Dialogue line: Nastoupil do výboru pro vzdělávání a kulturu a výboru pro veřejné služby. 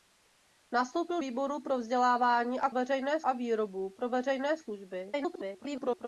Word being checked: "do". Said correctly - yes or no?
no